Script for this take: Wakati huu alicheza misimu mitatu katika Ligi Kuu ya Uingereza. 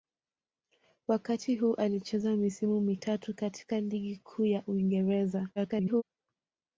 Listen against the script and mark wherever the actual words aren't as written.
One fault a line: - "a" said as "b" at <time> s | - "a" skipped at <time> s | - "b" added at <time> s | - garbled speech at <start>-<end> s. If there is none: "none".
- garbled speech at 5.6-6.0 s